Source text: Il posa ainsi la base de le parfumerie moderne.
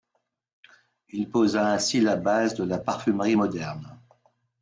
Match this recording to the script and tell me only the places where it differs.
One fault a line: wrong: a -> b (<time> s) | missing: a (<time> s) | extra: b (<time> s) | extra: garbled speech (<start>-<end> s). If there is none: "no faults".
wrong: le -> la (2.6 s)